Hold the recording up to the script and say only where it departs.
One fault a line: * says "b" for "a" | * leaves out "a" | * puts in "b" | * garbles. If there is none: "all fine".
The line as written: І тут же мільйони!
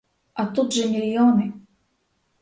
* says "А" for "І"